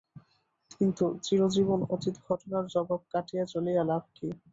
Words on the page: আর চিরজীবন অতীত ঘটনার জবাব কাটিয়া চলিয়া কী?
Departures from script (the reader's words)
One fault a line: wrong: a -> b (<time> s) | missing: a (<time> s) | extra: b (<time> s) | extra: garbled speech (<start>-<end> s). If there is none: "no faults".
wrong: আর -> কিন্তু (0.7 s)
extra: লাভ (3.8 s)